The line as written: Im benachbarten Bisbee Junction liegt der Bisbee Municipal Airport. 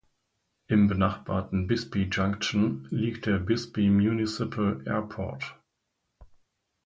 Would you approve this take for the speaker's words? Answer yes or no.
yes